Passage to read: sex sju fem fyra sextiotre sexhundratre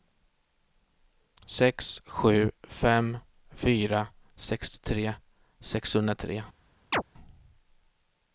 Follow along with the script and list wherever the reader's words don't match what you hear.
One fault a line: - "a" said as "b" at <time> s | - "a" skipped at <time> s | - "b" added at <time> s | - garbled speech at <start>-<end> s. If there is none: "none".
none